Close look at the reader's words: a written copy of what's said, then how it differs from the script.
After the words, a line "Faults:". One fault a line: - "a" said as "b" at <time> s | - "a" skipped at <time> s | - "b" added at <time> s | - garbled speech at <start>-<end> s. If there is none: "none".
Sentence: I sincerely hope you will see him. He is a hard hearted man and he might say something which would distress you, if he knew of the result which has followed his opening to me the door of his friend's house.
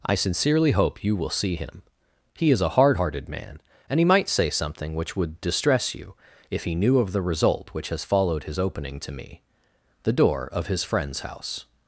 I sincerely hope you will see him. He is a hard hearted man and he might say something which would distress you, if he knew of the result which has followed his opening to me the door of his friend's house.
Faults:
none